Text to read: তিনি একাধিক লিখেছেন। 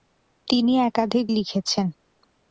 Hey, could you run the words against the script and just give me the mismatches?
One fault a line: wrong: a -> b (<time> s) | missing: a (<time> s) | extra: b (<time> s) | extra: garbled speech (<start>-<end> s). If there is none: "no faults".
no faults